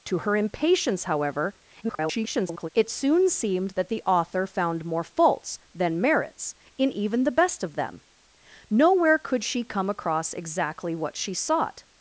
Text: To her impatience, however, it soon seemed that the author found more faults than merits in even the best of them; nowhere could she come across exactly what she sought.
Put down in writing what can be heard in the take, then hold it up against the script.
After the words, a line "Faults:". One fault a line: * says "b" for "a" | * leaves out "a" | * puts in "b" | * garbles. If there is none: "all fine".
To her impatience, however, [garbled] it soon seemed that the author found more faults than merits in even the best of them; nowhere could she come across exactly what she sought.
Faults:
* garbles